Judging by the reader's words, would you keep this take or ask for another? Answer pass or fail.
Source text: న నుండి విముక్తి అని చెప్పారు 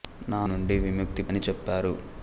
pass